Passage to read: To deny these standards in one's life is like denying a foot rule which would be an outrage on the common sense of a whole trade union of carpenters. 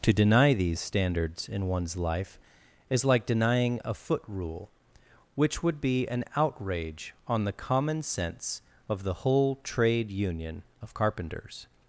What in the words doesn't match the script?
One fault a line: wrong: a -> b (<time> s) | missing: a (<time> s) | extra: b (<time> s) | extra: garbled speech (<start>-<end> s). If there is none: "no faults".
wrong: a -> the (9.0 s)